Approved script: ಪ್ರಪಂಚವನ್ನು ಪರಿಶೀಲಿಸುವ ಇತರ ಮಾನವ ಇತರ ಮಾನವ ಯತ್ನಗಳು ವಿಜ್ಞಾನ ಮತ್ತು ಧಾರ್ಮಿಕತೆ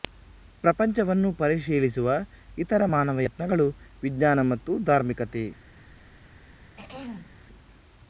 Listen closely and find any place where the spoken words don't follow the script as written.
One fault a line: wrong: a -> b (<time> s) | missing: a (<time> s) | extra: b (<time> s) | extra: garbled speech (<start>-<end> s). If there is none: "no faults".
missing: ಇತರ ಮಾನವ (3.2 s)